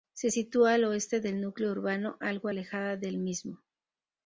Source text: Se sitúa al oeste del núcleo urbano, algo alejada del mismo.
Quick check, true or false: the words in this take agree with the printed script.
true